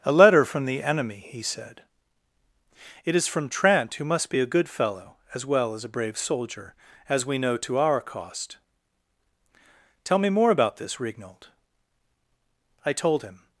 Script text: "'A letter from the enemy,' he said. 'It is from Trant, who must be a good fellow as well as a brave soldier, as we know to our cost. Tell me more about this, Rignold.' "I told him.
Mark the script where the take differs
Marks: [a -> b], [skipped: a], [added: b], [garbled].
"'A letter from the enemy,' he said. 'It is from Trant, who must be a good fellow as well as a brave soldier, as we know to our cost. Tell me more about this, Rignold.' "I told him.